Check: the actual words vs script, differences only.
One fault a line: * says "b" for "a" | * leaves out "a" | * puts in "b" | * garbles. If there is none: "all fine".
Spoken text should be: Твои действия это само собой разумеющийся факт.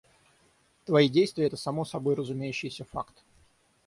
all fine